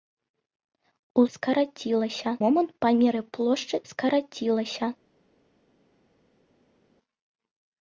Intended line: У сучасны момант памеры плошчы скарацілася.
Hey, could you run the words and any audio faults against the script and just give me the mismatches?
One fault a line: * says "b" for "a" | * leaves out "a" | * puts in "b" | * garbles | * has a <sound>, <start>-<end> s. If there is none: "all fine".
* says "скарацілася" for "сучасны"